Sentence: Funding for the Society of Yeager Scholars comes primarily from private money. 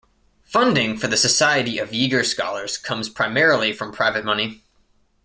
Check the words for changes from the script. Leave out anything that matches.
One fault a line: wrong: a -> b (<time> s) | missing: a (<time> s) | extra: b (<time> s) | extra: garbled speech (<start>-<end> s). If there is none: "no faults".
no faults